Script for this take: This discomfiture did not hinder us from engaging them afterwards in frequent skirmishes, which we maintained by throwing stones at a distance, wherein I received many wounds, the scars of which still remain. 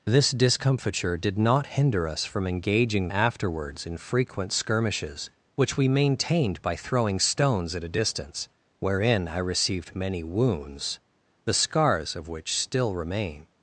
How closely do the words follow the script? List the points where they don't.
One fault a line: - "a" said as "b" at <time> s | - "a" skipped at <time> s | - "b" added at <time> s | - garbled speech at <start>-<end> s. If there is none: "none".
- "them" skipped at 3.1 s